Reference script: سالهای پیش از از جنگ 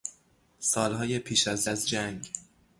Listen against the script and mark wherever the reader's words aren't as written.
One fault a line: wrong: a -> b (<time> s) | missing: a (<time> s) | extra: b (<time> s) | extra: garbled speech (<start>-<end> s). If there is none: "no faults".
no faults